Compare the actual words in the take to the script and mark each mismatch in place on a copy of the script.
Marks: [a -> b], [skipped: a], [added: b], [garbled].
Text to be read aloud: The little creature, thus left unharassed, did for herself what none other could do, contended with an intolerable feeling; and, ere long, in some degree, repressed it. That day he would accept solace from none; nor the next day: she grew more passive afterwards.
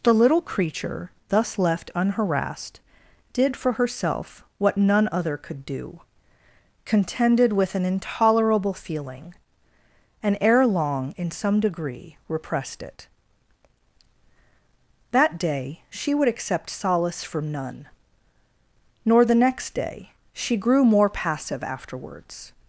The little creature, thus left unharassed, did for herself what none other could do, contended with an intolerable feeling; and, ere long, in some degree, repressed it. That day [he -> she] would accept solace from none; nor the next day: she grew more passive afterwards.